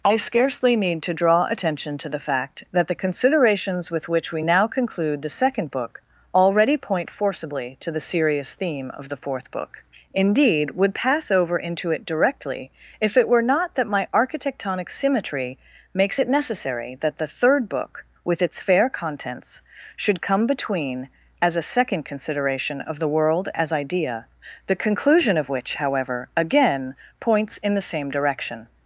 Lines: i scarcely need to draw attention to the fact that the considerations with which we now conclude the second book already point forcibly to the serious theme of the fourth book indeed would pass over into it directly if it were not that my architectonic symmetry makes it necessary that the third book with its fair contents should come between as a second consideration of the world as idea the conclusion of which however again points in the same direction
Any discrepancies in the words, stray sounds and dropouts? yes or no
no